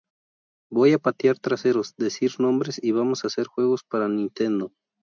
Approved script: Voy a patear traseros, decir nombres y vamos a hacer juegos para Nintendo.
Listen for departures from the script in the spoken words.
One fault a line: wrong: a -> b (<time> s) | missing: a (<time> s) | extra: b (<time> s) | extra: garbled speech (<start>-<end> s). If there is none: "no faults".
no faults